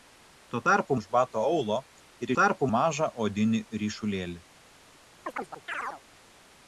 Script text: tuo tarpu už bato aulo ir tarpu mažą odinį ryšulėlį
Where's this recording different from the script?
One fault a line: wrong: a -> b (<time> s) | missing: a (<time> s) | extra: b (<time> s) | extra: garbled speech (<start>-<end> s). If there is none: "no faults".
no faults